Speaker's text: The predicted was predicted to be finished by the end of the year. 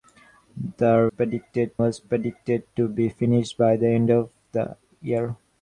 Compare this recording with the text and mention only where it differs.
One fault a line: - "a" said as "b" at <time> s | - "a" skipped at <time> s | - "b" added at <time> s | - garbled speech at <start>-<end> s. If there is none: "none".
none